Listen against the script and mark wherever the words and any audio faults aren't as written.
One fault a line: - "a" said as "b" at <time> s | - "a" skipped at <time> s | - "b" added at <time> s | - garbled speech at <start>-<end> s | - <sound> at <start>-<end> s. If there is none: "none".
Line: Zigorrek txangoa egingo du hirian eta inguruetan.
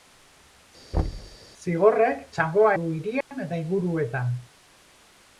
- thud at 0.9-1.4 s
- "egingo" skipped at 2.7 s
- dropout at 3.2-3.3 s